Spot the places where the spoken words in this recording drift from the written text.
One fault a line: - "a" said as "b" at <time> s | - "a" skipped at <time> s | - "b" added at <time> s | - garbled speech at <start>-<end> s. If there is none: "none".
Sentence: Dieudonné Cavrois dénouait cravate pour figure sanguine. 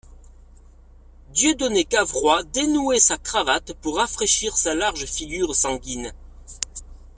- "sa" added at 3.0 s
- "rafraîchir sa large" added at 4.0 s